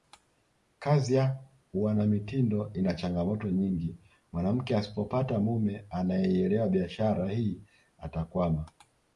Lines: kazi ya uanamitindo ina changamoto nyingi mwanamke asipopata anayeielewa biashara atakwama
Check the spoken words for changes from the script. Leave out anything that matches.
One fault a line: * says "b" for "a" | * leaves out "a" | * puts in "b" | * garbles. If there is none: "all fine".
* puts in "mume"
* puts in "hii"